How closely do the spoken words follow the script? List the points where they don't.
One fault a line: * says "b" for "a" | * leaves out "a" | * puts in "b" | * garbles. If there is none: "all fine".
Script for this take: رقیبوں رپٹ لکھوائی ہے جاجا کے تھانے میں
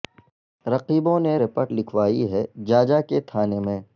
* puts in "نے"